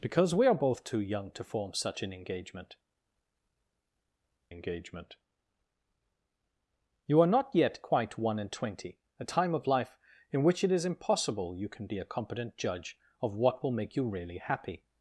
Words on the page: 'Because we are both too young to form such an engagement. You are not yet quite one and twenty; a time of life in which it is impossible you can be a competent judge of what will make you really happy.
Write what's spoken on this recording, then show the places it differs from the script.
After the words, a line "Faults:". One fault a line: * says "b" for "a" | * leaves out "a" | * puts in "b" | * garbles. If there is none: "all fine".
'Because we are both too young to form such an engagement engagement. You are not yet quite one and twenty; a time of life in which it is impossible you can be a competent judge of what will make you really happy.
Faults:
* puts in "engagement"